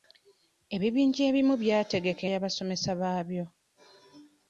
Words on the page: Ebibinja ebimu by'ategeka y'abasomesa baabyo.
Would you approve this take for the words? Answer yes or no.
yes